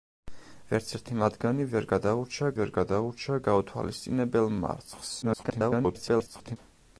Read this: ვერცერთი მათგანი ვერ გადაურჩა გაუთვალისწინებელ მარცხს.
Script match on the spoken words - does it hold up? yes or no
no